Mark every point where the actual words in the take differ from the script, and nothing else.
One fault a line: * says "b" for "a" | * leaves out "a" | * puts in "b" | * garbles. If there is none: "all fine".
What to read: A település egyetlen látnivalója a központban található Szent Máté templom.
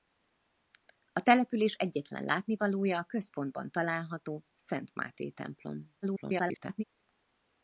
* garbles